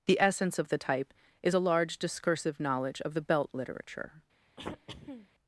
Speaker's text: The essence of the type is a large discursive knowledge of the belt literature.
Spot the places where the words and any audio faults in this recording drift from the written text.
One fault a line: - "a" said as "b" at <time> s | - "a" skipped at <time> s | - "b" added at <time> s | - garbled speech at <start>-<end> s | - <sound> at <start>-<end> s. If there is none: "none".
- throat clearing at 4.6-5.3 s